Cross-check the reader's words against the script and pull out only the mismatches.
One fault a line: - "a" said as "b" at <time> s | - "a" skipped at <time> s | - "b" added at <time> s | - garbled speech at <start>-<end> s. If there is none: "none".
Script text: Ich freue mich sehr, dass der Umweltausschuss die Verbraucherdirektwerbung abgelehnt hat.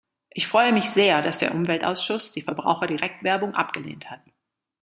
none